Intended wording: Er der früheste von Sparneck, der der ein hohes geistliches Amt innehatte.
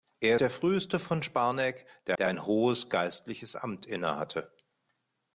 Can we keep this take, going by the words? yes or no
yes